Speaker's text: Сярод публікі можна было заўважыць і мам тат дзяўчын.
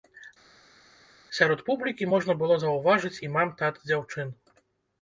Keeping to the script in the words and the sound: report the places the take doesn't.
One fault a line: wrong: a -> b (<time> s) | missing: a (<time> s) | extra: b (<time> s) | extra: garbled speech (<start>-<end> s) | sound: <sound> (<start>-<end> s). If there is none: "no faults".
no faults